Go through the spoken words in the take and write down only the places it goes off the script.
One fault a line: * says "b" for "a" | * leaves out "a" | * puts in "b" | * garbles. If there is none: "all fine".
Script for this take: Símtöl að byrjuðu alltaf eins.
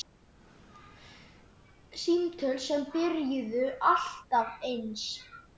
* says "sem" for "að"